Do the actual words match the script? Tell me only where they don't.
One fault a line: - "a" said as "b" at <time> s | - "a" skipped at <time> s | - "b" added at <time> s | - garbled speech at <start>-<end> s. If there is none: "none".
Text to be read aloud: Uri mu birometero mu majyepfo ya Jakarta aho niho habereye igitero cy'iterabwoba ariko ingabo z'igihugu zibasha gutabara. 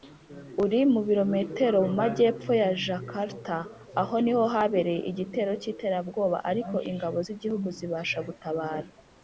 none